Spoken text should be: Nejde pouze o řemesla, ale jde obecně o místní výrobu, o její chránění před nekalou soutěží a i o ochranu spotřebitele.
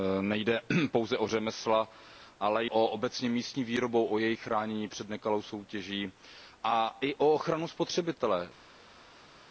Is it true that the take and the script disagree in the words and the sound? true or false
true